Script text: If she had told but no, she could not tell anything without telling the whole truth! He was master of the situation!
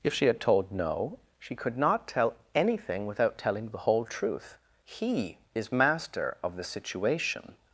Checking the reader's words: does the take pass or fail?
fail